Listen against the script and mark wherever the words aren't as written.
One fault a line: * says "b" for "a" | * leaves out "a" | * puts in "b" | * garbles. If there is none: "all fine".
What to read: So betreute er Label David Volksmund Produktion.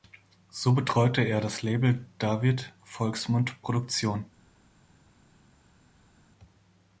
* puts in "das"